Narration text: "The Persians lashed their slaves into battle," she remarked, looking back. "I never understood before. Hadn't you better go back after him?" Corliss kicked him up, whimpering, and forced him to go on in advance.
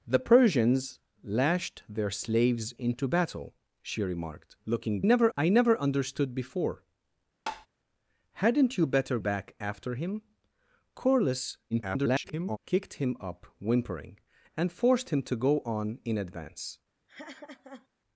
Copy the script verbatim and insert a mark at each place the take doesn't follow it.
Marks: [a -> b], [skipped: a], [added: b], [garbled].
"The Persians lashed their slaves into battle," she remarked, looking [back. -> never] "I never understood before. Hadn't you better [skipped: go] back after him?" Corliss [garbled] kicked him up, whimpering, and forced him to go on in advance.